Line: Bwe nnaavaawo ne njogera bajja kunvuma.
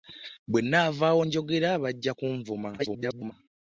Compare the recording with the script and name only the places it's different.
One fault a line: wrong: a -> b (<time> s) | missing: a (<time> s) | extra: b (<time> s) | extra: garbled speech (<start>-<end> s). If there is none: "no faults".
missing: ne (1.2 s)
extra: garbled speech (2.8-3.3 s)